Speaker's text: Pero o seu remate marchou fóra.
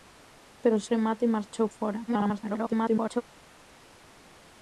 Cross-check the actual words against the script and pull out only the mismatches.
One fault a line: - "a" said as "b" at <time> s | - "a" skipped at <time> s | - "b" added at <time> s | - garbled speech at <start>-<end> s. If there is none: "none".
- "seu" skipped at 0.8 s
- garbled speech at 2.1-3.2 s